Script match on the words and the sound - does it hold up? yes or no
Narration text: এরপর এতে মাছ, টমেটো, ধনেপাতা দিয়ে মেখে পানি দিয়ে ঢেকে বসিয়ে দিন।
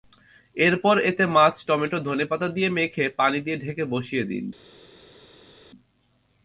yes